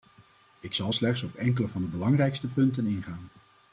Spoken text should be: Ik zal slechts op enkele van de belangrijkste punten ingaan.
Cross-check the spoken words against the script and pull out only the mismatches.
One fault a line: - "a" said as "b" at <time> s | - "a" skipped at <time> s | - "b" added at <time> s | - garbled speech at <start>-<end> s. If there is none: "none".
none